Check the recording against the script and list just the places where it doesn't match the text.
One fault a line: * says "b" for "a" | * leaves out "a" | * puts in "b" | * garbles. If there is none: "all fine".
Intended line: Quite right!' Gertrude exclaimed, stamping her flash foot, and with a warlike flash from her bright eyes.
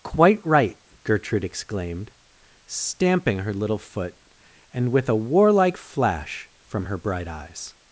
* says "little" for "flash"